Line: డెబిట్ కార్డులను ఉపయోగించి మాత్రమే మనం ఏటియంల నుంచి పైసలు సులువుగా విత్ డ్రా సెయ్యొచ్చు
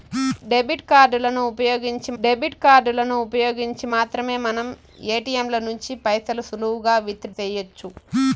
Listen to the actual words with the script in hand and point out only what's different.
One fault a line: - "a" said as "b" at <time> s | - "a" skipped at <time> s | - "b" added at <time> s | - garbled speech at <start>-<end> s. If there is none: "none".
- "డెబిట్ కార్డులను ఉపయోగించి" added at 2.2 s
- "డ్రా" skipped at 7.3 s